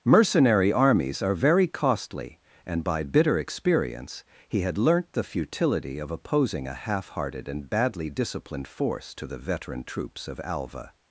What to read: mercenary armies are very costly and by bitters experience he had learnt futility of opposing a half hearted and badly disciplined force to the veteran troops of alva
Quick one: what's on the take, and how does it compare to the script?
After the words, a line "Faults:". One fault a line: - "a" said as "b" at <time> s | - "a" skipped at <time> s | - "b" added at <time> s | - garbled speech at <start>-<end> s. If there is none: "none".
mercenary armies are very costly and by bitter experience he had learnt the futility of opposing a half hearted and badly disciplined force to the veteran troops of alva
Faults:
- "bitters" said as "bitter" at 3.0 s
- "the" added at 5.1 s